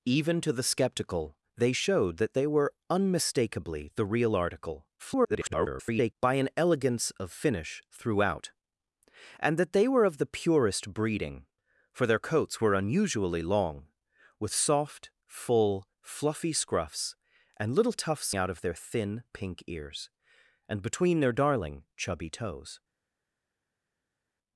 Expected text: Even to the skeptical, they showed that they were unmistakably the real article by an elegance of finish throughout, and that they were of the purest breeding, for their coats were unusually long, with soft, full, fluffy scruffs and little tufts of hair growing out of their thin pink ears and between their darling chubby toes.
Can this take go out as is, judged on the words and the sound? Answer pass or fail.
fail